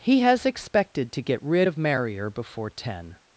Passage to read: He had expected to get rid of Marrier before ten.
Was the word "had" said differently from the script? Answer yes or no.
yes